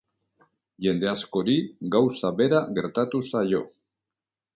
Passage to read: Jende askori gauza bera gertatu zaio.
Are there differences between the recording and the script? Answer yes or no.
no